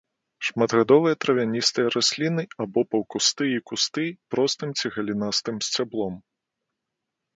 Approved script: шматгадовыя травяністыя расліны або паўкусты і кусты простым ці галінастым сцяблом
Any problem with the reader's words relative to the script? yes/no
no